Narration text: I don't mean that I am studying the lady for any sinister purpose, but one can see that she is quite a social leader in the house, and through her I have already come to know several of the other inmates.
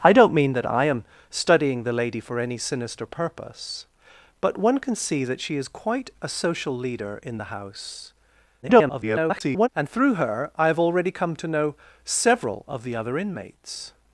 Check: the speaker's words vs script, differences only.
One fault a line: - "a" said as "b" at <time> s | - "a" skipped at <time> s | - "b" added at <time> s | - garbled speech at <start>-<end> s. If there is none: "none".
- garbled speech at 8.6-9.7 s